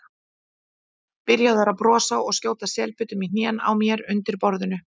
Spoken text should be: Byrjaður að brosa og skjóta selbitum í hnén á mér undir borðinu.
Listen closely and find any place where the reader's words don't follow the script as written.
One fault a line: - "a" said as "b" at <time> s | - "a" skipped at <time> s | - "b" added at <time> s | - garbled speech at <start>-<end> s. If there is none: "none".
none